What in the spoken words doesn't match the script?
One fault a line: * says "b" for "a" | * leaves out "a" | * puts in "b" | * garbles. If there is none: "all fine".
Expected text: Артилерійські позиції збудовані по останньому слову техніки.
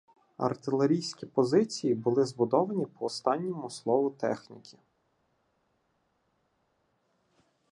* puts in "були"